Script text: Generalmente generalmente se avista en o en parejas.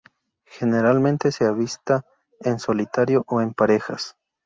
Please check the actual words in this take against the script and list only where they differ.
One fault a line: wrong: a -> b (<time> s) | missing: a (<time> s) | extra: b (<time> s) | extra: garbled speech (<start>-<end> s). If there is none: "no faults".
missing: generalmente (1.3 s)
extra: solitario (2.6 s)